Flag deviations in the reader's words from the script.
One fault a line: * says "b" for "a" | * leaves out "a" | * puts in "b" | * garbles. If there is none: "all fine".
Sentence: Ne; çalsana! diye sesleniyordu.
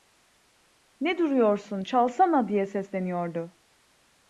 * puts in "duruyorsun"